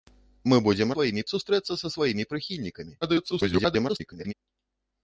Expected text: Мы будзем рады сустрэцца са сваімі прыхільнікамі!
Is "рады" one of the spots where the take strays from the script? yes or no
yes